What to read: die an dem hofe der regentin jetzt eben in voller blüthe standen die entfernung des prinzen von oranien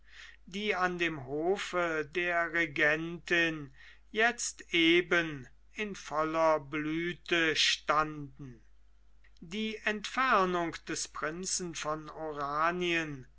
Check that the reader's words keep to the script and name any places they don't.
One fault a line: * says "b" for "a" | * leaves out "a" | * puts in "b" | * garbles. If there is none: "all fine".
all fine